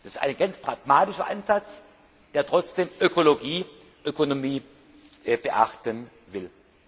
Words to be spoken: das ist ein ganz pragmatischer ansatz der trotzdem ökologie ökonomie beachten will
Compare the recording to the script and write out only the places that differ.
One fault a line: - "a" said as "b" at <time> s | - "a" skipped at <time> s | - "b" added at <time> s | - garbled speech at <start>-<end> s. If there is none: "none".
none